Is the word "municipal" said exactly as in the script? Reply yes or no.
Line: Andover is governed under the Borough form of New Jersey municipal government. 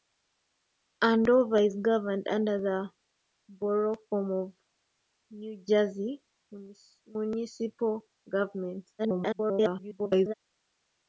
yes